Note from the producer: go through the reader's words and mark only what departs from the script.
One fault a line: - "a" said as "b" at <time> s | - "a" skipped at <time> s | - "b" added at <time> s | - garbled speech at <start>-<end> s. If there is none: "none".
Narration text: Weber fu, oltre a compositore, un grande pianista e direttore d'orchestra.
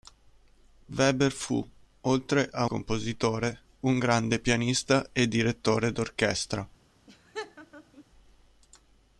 none